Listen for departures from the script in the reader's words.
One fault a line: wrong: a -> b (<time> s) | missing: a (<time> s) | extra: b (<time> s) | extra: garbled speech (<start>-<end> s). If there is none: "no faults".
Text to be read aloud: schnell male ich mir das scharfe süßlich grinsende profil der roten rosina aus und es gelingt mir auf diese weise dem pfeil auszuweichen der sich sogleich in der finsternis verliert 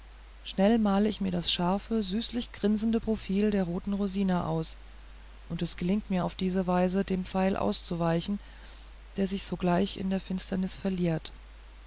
no faults